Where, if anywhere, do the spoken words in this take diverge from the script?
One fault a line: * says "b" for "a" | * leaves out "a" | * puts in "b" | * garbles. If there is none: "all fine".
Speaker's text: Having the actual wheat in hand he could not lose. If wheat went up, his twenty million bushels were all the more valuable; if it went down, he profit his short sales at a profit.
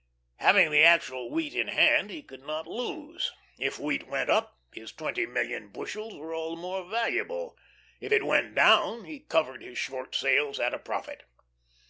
* says "covered" for "profit"